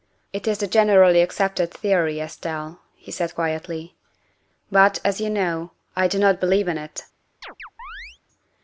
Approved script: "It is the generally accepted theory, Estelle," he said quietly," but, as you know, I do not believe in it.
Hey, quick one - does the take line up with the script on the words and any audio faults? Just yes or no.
no